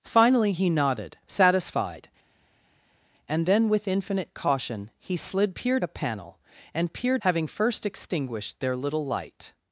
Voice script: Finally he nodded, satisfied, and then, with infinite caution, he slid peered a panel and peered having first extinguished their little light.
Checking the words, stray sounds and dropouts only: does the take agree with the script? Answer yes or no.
yes